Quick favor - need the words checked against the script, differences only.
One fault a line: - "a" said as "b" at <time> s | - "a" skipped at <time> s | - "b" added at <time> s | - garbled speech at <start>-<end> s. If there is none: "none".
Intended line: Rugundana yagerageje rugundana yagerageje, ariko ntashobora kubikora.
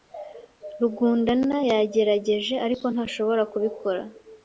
- "rugundana yagerageje" skipped at 2.5 s